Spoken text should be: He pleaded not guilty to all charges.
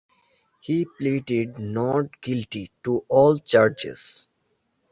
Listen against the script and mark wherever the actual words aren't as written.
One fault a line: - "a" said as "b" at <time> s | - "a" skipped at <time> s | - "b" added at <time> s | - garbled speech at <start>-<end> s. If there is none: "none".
none